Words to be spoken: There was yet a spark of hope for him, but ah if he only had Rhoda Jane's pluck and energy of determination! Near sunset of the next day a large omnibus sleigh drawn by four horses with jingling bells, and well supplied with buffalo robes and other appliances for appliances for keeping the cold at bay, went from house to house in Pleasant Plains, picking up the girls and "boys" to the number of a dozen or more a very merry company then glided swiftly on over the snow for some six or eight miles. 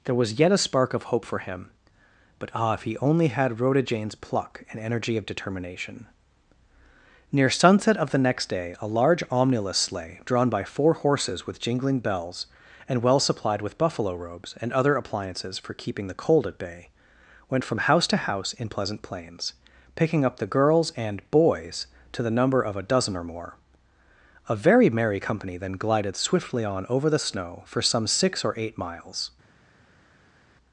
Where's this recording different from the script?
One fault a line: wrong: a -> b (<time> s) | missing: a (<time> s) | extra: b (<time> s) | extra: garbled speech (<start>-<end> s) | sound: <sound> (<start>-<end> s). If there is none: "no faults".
missing: appliances for (15.8 s)